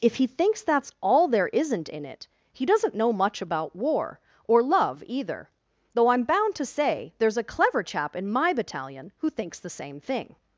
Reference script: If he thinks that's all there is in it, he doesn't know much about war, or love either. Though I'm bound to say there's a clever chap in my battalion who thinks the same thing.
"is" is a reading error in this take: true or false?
true